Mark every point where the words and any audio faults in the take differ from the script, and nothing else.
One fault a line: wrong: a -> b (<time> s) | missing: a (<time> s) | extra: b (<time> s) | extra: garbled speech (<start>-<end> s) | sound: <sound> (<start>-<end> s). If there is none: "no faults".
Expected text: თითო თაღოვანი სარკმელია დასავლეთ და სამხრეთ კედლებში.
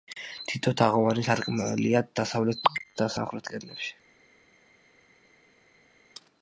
no faults